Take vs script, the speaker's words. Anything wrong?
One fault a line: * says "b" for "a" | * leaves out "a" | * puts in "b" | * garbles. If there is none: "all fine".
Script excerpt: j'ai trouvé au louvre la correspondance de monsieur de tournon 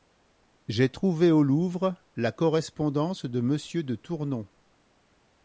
all fine